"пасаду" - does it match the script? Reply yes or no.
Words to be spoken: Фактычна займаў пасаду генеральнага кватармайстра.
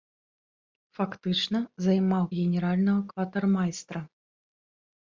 no